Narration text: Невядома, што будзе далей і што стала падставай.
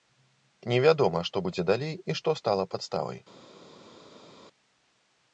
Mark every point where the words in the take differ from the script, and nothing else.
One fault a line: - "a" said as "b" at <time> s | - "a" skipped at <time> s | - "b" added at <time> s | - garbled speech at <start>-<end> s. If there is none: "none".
none